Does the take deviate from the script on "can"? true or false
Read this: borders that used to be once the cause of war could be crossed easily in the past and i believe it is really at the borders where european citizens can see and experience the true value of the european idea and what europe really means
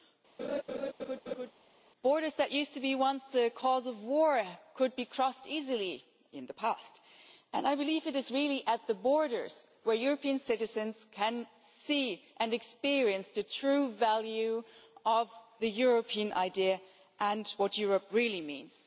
false